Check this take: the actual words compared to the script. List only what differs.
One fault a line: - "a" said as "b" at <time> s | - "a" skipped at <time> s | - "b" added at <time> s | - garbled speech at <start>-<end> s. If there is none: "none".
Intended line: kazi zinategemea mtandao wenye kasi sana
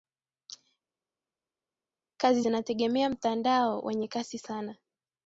none